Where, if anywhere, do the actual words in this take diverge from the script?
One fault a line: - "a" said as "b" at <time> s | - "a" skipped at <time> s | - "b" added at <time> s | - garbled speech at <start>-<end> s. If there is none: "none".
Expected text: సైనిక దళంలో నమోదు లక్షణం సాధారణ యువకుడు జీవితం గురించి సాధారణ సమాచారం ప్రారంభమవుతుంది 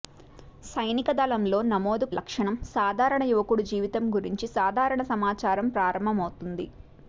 none